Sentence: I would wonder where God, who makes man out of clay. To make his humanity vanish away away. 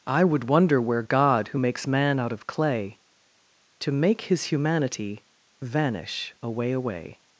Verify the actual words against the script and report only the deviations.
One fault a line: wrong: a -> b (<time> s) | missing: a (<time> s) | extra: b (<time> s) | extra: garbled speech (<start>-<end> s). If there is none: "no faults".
no faults